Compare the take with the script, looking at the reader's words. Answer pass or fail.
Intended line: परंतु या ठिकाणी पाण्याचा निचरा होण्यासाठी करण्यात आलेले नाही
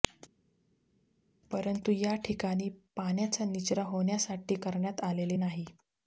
pass